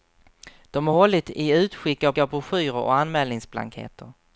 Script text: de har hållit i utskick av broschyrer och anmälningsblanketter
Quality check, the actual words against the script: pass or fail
fail